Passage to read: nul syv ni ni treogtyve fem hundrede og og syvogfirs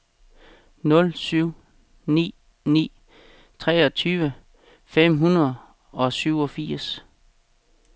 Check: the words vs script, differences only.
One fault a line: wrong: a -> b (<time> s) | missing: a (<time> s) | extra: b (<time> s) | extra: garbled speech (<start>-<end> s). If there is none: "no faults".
missing: og (6.1 s)